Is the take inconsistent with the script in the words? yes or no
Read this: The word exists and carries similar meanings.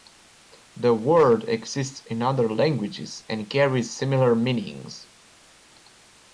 yes